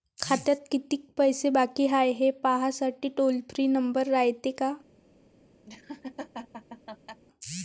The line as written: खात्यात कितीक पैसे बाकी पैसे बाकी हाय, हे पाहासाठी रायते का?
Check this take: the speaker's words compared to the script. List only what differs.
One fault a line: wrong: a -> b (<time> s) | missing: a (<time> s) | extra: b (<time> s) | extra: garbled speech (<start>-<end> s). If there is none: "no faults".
missing: पैसे बाकी (1.9 s)
extra: टोल फ्री नंबर (3.1 s)